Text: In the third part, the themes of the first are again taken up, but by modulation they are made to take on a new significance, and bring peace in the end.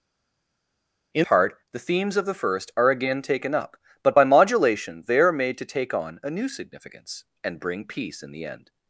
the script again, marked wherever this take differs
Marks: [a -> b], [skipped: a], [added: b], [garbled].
In [skipped: the third] part, the themes of the first are again taken up, but by modulation they are made to take on a new significance, and bring peace in the end.